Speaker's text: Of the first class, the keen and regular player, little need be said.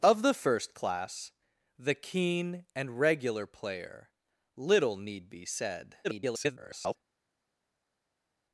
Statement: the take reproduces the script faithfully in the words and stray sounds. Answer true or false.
false